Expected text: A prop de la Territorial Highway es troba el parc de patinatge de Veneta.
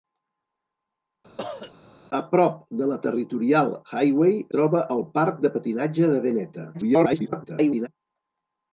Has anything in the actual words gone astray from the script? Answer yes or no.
yes